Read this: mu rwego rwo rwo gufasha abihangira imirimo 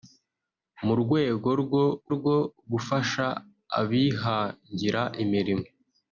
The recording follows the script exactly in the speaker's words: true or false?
true